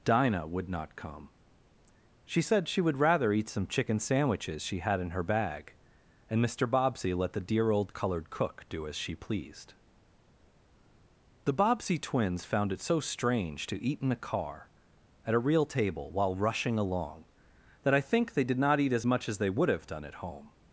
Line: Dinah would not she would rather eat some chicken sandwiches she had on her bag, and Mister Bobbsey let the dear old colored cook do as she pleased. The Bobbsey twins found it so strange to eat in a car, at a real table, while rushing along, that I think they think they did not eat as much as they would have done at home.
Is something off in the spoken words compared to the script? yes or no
yes